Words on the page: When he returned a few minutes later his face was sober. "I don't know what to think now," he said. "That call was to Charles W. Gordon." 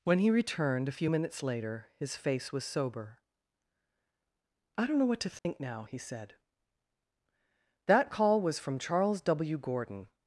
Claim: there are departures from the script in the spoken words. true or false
true